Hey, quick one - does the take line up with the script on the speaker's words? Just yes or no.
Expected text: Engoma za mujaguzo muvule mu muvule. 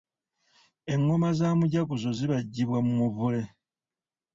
no